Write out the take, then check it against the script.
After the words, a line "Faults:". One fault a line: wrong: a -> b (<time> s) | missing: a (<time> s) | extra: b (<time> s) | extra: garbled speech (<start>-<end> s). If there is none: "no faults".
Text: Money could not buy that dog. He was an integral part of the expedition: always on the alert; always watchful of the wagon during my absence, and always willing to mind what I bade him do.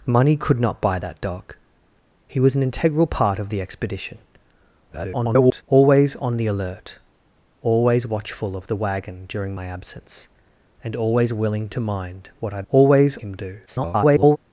Money could not buy that dog. He was an integral part of the expedition: [garbled] always on the alert; always watchful of the wagon during my absence, and always willing to mind what I always him do. [garbled]
Faults:
extra: garbled speech (4.9-5.6 s)
wrong: bade -> always (12.7 s)
extra: garbled speech (13.7-14.4 s)